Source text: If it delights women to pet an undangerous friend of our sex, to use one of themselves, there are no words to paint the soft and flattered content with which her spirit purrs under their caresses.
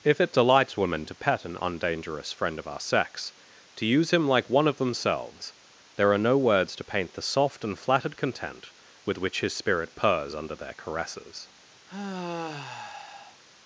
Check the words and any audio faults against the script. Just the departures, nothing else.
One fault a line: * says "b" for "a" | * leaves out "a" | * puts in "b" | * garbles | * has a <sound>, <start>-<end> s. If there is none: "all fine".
* puts in "him like"
* says "his" for "her"
* has a sigh, 11.9-13.4 s